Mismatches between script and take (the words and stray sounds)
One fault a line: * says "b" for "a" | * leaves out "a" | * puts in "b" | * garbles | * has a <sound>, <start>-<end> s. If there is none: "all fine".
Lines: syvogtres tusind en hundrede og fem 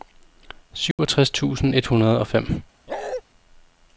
* has a dropout, 0.9-1.0 s
* says "et" for "en"
* has a bark, 2.9-3.2 s